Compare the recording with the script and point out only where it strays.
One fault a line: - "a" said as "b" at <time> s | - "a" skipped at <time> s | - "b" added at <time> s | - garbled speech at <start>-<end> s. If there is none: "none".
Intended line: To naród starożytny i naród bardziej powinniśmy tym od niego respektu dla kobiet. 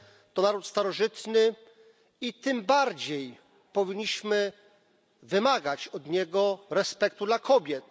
- "naród" said as "tym" at 2.3 s
- "tym" said as "wymagać" at 5.2 s